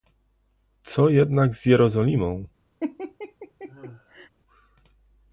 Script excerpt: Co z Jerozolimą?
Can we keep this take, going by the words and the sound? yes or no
no